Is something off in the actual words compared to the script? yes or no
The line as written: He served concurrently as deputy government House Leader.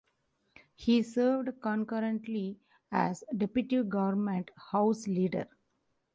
no